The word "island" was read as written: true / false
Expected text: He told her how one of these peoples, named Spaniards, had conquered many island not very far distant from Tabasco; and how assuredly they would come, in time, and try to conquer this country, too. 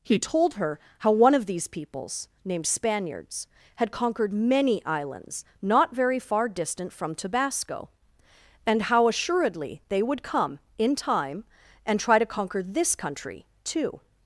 false